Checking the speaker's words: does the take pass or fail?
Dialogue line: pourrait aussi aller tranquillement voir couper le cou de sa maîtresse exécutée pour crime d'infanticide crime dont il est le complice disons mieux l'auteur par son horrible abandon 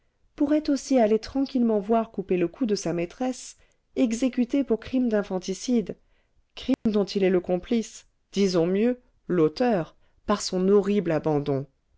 pass